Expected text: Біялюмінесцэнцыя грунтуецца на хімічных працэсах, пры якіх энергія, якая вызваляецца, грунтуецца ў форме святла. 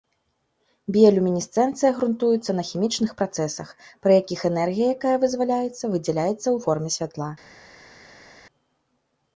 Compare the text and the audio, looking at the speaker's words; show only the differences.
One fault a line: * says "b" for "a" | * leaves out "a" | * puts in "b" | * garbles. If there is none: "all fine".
* says "выдзяляецца" for "грунтуецца"